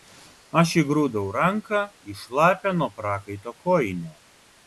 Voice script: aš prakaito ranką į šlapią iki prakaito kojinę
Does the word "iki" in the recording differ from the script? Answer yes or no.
yes